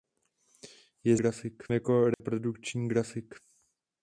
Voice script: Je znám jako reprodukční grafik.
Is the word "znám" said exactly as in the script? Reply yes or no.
no